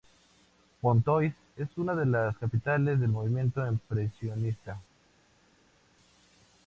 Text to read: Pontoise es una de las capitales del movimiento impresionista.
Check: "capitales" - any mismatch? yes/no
no